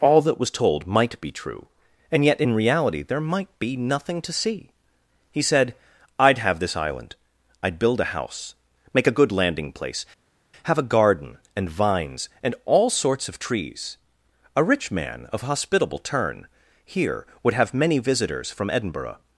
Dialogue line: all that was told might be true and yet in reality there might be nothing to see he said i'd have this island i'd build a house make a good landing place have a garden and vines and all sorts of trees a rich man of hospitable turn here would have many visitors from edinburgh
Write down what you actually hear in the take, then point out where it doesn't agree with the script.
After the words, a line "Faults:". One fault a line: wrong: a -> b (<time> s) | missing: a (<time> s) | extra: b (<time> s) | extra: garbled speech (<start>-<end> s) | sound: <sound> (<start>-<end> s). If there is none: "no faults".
all that was told might be true and yet in reality there might be nothing to see he said i'd have this island i'd build a house make a good landing place have a garden and vines and all sorts of trees a rich man of hospitable turn here would have many visitors from edinburgh
Faults:
no faults